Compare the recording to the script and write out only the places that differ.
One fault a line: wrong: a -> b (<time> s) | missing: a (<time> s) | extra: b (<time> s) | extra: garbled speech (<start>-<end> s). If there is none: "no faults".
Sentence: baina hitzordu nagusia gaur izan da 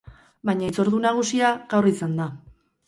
no faults